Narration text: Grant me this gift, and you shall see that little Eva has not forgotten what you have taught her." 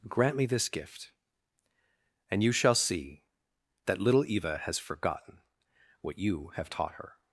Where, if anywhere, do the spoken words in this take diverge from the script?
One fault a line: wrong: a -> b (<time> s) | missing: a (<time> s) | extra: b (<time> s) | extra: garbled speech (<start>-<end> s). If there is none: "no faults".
missing: not (4.8 s)